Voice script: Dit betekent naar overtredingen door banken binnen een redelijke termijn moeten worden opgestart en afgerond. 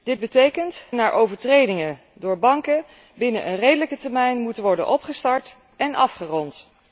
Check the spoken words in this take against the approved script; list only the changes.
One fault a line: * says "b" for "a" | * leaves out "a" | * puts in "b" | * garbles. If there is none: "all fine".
all fine